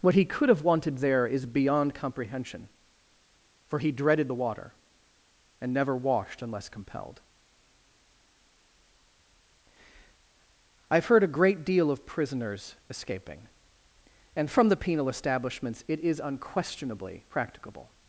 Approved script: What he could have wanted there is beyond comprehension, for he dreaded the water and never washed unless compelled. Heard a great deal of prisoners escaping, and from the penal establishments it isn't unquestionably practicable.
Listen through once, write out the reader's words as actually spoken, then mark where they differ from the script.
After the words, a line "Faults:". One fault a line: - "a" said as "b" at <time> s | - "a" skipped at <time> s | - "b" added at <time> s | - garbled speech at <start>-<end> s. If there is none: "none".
What he could have wanted there is beyond comprehension, for he dreaded the water and never washed unless compelled. I've heard a great deal of prisoners escaping, and from the penal establishments it is unquestionably practicable.
Faults:
- "I've" added at 10.9 s
- "isn't" said as "is" at 16.0 s